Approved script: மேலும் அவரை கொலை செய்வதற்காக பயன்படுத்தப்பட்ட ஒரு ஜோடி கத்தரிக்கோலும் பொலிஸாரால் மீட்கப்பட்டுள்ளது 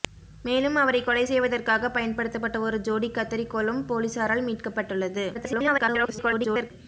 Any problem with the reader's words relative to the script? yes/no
yes